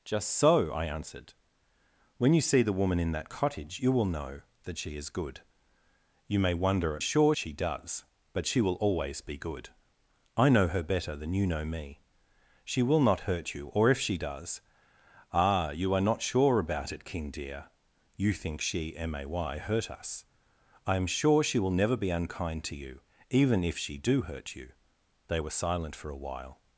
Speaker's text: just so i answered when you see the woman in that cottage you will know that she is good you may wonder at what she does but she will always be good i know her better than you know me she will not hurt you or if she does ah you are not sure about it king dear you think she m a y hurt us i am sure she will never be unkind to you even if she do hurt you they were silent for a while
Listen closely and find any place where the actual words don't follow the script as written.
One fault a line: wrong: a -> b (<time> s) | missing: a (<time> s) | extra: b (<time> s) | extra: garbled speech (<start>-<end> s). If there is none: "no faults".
wrong: what -> sure (7.0 s)